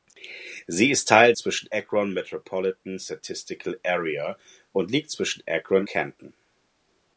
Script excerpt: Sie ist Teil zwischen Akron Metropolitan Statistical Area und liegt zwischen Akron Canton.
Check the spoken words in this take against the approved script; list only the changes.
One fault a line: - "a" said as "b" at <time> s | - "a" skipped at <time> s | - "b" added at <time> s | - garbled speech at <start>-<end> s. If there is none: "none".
none